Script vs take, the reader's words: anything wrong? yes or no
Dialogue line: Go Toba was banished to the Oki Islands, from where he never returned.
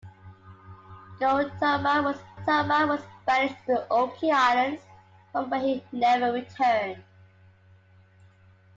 yes